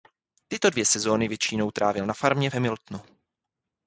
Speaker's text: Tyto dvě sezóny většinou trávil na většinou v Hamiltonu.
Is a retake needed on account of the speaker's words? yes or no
yes